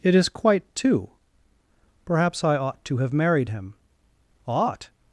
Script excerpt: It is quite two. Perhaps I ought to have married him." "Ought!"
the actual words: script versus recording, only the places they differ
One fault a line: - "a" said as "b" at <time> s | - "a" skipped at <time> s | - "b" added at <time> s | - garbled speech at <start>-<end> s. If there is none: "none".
none